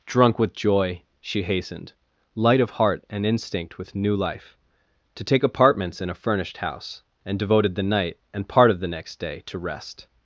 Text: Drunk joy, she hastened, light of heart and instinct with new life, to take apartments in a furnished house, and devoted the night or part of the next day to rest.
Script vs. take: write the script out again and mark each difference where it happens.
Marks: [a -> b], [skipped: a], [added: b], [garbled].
Drunk [added: with] joy, she hastened, light of heart and instinct with new life, to take apartments in a furnished house, and devoted the night [or -> and] part of the next day to rest.